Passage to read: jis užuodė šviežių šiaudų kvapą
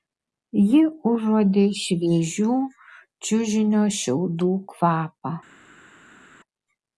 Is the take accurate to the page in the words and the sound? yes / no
no